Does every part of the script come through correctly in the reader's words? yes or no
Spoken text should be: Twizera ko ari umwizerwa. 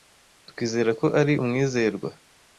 yes